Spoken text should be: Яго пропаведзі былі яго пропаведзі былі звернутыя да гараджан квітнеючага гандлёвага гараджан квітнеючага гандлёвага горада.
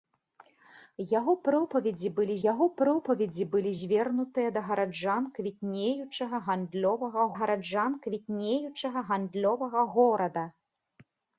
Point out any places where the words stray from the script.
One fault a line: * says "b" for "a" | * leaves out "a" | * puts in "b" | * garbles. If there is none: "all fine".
all fine